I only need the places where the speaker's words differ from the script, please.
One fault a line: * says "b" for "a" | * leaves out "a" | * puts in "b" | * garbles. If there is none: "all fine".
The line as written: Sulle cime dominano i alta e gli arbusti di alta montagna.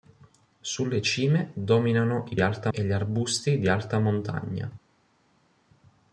all fine